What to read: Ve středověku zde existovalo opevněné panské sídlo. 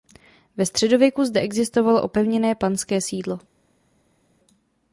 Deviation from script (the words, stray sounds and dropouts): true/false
false